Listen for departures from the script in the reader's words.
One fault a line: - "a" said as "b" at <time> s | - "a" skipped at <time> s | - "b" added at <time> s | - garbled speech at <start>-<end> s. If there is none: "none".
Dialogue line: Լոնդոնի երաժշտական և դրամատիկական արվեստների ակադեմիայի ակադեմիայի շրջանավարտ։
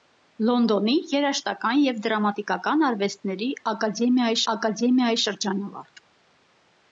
none